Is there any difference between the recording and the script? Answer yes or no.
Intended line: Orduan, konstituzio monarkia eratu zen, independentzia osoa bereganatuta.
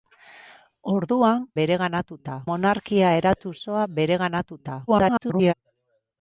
yes